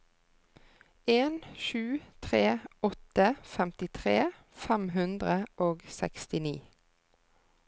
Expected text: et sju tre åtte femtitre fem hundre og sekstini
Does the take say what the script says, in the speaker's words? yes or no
no